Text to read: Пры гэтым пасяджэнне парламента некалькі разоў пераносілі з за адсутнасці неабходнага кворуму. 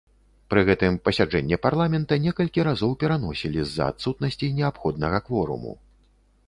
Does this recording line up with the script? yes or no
yes